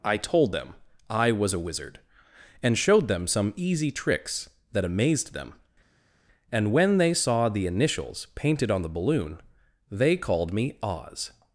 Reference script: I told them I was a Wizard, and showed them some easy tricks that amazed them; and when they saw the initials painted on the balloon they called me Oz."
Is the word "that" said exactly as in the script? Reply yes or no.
yes